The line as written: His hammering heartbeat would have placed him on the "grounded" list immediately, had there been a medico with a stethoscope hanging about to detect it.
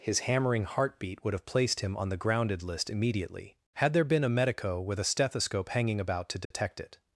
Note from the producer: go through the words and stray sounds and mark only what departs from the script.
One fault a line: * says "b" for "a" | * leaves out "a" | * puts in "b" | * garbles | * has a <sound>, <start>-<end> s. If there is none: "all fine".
* has a dropout, 6.4-6.5 s